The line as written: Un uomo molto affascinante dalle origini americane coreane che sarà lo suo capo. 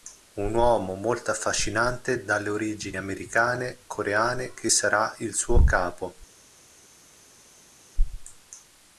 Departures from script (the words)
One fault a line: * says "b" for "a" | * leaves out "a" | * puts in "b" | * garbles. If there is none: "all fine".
* says "il" for "lo"